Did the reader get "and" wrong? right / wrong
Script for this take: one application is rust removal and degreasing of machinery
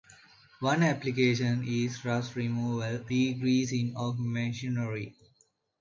wrong